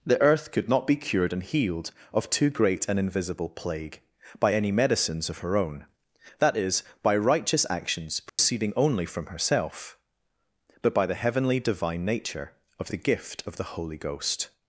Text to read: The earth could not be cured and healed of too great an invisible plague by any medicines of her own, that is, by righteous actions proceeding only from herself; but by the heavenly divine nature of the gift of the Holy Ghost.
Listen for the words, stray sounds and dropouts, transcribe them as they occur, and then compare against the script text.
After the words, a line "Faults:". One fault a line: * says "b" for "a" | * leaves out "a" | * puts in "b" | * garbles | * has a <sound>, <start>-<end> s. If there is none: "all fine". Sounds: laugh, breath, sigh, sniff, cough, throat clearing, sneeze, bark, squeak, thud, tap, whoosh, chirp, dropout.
The earth could not be cured and healed of too great an invisible plague by any medicines of her own, that is, by righteous actions proceeding only from herself; but by the heavenly divine nature of the gift of the Holy Ghost.
Faults:
* has a dropout, 8.3-8.4 s